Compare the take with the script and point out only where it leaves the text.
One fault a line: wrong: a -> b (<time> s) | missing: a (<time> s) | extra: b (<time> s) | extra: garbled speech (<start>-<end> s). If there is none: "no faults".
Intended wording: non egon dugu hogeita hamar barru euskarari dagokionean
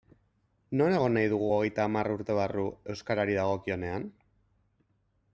extra: nahi (1.2 s)
extra: urte (2.2 s)